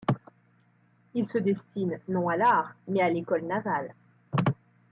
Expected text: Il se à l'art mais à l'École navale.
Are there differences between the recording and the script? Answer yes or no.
yes